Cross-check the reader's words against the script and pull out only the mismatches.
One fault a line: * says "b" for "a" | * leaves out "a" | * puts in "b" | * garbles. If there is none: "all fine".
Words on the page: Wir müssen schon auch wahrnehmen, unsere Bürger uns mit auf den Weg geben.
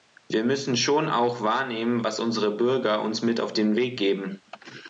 * puts in "was"